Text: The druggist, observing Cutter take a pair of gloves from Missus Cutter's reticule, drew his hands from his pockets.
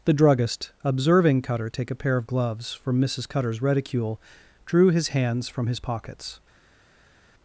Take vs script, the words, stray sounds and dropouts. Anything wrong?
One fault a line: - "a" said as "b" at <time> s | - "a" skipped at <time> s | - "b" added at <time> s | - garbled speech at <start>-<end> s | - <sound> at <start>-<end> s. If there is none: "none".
none